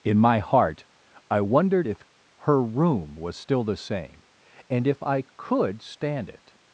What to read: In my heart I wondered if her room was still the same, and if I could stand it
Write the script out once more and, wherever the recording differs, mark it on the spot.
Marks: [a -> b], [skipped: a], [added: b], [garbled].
In my heart I wondered if her room was still the same, and if I could stand it